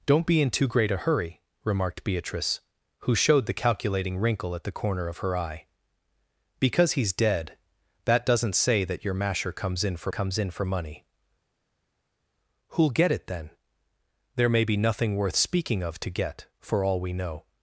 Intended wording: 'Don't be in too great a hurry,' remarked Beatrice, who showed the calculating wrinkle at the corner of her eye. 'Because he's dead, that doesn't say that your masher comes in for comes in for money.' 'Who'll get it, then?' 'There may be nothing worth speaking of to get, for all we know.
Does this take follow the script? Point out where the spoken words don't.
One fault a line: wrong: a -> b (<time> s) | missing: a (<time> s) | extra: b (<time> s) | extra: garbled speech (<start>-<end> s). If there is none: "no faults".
no faults